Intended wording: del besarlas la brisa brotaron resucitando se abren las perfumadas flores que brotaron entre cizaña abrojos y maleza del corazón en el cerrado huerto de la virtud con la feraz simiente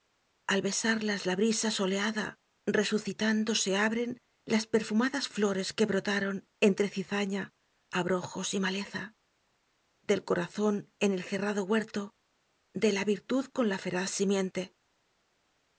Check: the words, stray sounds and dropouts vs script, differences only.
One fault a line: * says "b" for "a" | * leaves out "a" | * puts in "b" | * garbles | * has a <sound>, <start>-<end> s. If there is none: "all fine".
* says "al" for "del"
* says "soleada" for "brotaron"